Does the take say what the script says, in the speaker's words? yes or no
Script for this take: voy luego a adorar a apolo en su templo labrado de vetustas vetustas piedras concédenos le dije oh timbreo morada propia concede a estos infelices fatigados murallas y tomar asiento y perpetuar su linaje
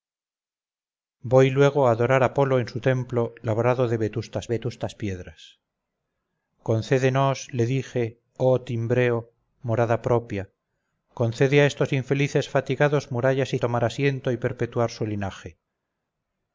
yes